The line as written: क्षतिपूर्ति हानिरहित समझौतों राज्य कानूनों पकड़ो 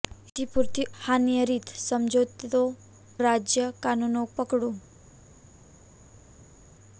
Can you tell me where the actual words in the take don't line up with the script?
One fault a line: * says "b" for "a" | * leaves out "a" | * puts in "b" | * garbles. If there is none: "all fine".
all fine